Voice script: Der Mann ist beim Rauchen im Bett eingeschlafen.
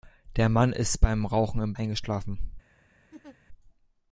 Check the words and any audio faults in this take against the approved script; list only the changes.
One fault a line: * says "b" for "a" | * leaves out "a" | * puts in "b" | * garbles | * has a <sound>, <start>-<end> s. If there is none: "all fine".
* leaves out "Bett"
* has a laugh, 3.1-3.4 s